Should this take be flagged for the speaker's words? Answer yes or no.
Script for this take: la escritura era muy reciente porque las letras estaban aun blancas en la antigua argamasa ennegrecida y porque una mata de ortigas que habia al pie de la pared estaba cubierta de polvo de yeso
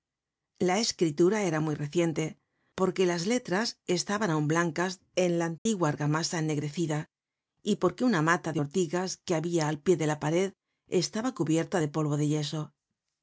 no